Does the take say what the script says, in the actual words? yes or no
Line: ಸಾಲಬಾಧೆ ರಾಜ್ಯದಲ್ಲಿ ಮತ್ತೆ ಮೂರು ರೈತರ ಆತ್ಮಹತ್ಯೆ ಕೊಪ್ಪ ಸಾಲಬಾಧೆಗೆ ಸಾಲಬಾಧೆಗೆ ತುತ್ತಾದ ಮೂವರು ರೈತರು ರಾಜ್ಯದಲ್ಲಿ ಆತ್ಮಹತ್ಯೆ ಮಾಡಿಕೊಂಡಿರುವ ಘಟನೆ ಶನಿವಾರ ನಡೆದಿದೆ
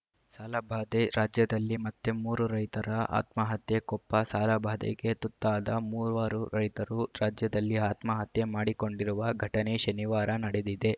no